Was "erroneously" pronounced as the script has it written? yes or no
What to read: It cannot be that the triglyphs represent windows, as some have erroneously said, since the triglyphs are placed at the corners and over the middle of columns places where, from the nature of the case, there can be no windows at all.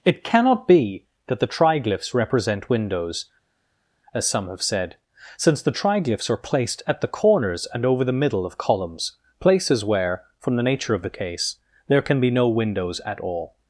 no